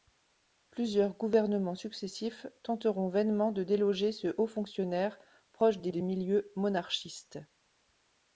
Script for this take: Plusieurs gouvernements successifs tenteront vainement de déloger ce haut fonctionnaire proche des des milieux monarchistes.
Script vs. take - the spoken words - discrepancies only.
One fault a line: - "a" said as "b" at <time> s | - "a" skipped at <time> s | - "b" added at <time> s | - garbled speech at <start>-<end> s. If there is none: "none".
none